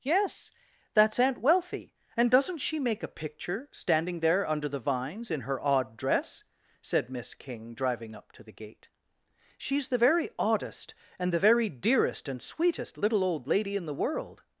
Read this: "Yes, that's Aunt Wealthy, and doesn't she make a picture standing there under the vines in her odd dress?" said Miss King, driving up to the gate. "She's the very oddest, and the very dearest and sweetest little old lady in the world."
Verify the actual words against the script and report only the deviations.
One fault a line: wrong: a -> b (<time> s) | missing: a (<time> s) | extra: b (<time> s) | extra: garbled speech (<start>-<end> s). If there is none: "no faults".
no faults